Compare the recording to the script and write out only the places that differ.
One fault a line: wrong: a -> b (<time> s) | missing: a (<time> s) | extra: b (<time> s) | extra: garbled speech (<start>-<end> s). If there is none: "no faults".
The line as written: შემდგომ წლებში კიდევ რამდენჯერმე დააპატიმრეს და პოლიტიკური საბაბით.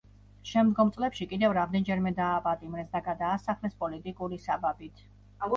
extra: გადაასახლეს (3.1 s)